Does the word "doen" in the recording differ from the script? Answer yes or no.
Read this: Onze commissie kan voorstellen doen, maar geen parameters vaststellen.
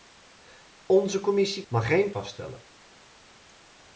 yes